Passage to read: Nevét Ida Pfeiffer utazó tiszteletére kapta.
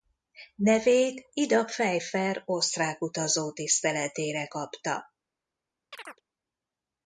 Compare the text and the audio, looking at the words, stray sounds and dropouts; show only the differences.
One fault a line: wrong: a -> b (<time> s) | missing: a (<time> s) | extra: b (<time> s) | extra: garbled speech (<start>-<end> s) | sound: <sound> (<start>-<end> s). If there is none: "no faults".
extra: osztrák (2.4 s)
sound: chirp (5.9-6.2 s)